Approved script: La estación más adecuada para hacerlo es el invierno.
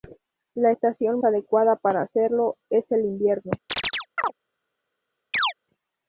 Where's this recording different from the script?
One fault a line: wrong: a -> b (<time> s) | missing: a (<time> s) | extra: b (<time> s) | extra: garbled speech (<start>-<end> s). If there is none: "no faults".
missing: más (1.2 s)